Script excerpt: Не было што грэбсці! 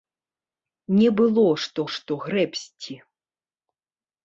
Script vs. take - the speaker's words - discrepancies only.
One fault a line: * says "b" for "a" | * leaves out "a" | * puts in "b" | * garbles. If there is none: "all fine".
* puts in "што"